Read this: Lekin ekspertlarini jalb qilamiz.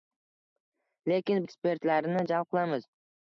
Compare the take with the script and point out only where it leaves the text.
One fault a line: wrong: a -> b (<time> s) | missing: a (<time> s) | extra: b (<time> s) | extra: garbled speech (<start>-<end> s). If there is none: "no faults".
no faults